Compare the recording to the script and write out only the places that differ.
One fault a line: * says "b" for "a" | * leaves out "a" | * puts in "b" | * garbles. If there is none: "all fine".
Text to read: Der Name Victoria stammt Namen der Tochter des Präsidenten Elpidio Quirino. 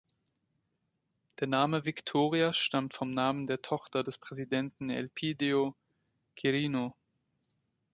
* puts in "vom"